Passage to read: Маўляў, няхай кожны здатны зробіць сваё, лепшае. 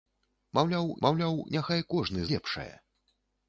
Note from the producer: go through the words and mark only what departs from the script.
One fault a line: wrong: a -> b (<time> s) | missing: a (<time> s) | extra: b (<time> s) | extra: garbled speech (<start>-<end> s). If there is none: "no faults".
extra: маўляў (1.0 s)
missing: здатны зробіць сваё (2.2 s)